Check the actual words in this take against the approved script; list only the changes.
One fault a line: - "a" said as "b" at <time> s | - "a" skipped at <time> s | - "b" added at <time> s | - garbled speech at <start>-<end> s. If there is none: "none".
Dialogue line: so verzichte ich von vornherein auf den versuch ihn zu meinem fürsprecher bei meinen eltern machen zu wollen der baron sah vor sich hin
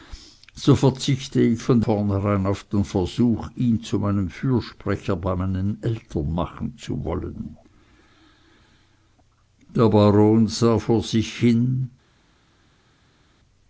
none